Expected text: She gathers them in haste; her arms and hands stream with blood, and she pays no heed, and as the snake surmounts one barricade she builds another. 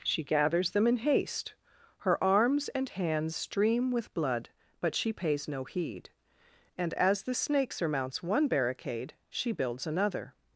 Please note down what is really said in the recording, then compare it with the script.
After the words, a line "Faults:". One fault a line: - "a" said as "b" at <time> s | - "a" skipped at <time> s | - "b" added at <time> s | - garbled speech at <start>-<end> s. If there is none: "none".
She gathers them in haste; her arms and hands stream with blood, but she pays no heed, and as the snake surmounts one barricade she builds another.
Faults:
- "and" said as "but" at 4.8 s